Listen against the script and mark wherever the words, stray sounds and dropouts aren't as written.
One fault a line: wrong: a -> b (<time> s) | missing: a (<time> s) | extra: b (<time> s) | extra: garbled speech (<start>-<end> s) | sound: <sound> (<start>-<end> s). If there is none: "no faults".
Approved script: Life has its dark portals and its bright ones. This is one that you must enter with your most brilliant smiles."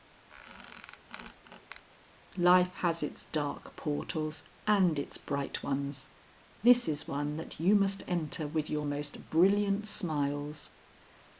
sound: squeak (0.3-1.9 s)